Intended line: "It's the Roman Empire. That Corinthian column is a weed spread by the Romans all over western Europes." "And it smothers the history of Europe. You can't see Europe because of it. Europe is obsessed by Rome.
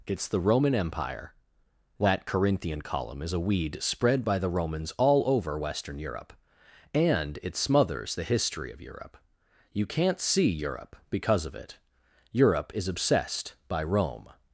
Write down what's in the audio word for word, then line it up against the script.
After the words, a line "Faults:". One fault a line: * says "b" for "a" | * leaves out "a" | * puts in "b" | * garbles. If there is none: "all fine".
"It's the Roman Empire. That Corinthian column is a weed spread by the Romans all over western Europe." "And it smothers the history of Europe. You can't see Europe because of it. Europe is obsessed by Rome.
Faults:
* says "Europe" for "Europes"